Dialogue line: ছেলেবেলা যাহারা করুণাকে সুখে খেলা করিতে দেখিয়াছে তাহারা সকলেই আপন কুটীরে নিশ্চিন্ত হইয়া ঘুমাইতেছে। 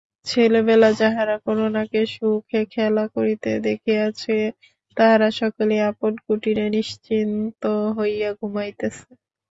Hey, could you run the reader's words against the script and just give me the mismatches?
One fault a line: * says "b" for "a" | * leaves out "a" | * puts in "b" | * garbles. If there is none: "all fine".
all fine